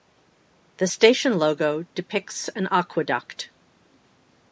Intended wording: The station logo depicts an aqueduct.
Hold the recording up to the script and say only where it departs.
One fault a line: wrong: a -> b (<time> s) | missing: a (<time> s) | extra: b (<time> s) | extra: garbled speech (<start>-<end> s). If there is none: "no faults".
no faults